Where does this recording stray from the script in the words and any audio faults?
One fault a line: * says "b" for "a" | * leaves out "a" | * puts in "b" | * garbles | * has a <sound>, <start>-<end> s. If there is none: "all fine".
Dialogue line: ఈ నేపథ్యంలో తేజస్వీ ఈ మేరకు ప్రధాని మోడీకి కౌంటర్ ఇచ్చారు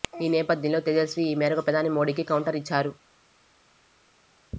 all fine